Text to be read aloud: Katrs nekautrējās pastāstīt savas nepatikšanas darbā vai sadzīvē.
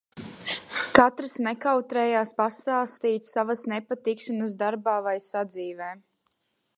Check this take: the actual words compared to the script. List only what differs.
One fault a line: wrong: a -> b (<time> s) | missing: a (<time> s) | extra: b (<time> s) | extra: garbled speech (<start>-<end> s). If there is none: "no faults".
no faults